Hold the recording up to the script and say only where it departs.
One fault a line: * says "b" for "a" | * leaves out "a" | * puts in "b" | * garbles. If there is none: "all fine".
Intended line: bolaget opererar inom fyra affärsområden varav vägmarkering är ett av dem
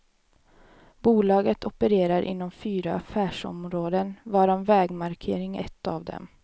* leaves out "är"